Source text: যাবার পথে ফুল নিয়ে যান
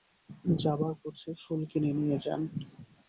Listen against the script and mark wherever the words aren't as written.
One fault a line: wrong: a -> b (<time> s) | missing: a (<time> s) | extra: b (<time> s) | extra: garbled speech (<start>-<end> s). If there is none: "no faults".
extra: কিনে (1.7 s)